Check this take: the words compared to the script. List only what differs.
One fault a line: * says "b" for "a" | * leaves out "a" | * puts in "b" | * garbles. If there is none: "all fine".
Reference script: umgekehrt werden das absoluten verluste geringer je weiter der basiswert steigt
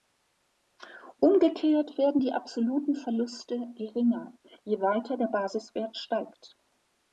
* says "die" for "das"